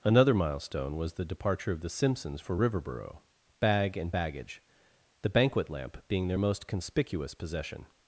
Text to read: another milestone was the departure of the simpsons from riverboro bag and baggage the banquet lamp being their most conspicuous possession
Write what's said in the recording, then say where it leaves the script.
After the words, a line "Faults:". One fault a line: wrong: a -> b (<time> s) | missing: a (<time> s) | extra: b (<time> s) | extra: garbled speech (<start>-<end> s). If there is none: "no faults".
another milestone was the departure of the simpsons for riverboro bag and baggage the banquet lamp being their most conspicuous possession
Faults:
wrong: from -> for (2.4 s)